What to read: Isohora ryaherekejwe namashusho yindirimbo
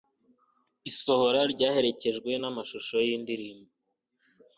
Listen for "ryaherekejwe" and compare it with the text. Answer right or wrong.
right